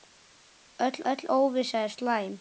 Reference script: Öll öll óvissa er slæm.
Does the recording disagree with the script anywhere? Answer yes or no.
no